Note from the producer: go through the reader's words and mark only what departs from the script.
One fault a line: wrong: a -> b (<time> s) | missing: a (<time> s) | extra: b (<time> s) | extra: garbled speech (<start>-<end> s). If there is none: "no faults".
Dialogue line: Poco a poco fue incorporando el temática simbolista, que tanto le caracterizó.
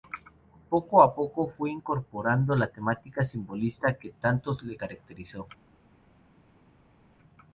wrong: el -> la (2.6 s)